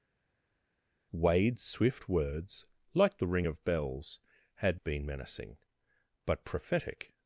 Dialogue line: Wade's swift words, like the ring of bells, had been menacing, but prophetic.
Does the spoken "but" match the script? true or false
true